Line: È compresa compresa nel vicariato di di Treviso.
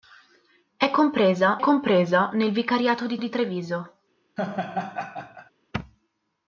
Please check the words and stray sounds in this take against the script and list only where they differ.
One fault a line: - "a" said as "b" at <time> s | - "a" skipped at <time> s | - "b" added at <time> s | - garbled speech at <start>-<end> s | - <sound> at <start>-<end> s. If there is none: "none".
- laugh at 4.4-5.5 s